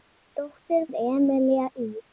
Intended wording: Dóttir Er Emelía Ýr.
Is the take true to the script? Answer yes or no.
yes